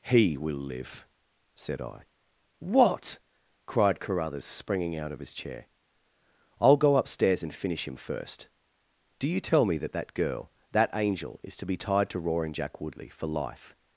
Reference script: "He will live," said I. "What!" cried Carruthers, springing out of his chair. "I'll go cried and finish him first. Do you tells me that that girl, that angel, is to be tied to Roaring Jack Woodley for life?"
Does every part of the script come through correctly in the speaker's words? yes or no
no